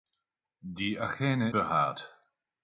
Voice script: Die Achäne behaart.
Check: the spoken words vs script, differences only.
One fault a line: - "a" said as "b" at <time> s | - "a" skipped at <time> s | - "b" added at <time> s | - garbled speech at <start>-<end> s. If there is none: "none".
none